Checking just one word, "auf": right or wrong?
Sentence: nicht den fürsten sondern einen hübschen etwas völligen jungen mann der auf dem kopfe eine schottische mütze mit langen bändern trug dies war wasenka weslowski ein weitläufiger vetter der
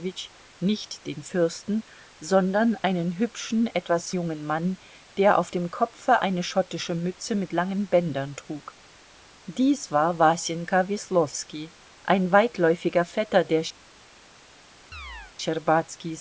right